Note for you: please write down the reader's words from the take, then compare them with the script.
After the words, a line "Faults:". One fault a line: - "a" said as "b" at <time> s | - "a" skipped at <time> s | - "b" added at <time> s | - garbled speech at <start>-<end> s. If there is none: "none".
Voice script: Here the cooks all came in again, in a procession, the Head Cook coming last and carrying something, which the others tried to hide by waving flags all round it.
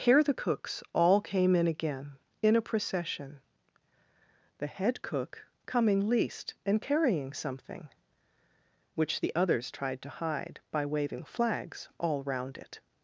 Here the cooks all came in again, in a procession, the Head Cook coming least and carrying something, which the others tried to hide by waving flags all round it.
Faults:
- "last" said as "least" at 6.1 s